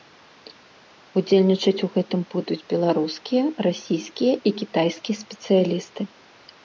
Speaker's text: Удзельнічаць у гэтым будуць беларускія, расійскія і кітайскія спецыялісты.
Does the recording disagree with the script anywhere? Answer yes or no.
no